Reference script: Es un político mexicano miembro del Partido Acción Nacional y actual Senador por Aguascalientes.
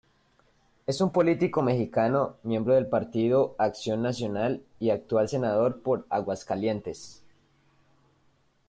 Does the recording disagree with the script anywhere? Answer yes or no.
no